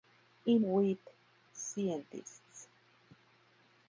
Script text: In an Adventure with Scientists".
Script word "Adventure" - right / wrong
wrong